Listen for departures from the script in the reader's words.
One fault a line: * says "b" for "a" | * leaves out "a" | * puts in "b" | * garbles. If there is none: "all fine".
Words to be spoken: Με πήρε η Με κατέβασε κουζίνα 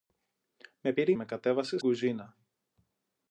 all fine